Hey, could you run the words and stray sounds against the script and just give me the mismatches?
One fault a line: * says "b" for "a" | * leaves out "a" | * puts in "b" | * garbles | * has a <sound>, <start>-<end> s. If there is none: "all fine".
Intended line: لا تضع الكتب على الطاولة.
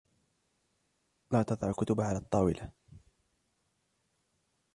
all fine